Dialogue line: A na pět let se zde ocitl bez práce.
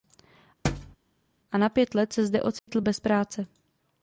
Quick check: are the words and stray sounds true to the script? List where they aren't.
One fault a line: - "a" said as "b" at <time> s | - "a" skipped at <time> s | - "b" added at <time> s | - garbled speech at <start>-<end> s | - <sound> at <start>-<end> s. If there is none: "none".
- thud at 0.6-1.0 s
- dropout at 2.6-2.7 s